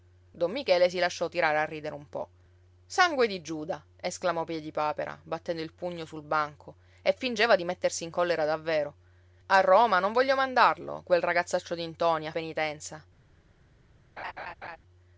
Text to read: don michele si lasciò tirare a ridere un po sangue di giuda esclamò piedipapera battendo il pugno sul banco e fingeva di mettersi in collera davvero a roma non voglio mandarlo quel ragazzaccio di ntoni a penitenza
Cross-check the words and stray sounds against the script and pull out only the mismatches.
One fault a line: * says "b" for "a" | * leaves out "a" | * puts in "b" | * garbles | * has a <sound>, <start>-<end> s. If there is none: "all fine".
* has a laugh, 14.2-14.8 s